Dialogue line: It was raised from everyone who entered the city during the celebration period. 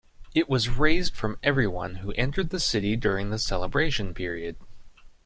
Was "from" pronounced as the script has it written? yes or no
yes